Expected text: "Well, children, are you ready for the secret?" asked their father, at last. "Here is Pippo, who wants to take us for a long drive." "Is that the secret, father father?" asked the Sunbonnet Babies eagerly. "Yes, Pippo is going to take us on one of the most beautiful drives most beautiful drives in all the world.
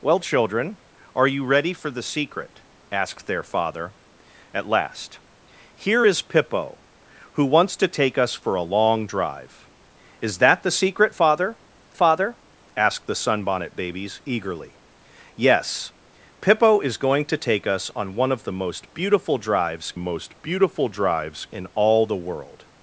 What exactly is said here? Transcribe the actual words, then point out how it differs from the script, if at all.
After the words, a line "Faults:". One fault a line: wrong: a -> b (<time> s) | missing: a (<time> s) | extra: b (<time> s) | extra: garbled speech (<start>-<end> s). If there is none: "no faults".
"Well, children, are you ready for the secret?" asked their father, at last. "Here is Pippo, who wants to take us for a long drive." "Is that the secret, father father?" asked the Sunbonnet Babies eagerly. "Yes, Pippo is going to take us on one of the most beautiful drives most beautiful drives in all the world.
Faults:
no faults